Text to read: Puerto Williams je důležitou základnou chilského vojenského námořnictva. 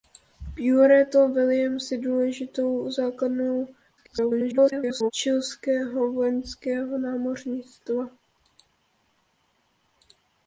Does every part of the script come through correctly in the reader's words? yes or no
no